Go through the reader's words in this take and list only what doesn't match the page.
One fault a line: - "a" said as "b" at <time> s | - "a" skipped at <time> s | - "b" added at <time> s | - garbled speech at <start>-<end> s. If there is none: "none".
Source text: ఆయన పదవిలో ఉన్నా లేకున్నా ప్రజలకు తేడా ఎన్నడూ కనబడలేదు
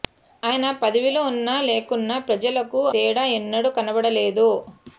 none